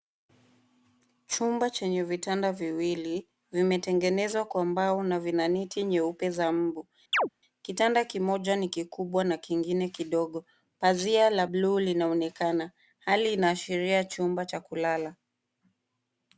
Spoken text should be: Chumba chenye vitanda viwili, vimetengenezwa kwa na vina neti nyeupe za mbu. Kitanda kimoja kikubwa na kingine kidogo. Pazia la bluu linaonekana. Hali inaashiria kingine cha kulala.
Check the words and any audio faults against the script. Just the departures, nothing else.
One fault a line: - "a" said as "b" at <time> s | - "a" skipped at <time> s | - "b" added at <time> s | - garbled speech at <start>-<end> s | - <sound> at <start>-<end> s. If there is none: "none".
- "mbao" added at 4.7 s
- chirp at 7.1-7.3 s
- "ni" added at 8.6 s
- "kingine" said as "chumba" at 14.0 s